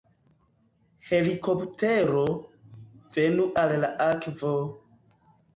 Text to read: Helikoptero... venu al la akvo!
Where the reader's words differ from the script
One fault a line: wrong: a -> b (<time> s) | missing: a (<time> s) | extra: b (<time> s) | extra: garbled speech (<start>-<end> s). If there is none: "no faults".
no faults